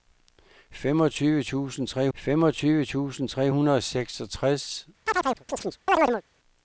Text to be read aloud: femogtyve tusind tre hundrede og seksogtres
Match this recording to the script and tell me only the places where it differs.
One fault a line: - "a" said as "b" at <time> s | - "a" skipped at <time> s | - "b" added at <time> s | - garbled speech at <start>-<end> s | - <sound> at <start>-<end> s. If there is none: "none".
- "femogtyve tusind tre" added at 2.1 s
- chirp at 5.1-6.2 s